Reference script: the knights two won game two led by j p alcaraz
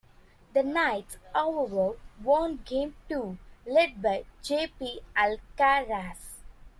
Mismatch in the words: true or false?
true